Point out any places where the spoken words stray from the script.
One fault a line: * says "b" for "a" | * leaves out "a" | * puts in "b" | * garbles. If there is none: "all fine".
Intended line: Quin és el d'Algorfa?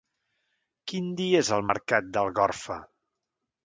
* puts in "dia"
* puts in "mercat"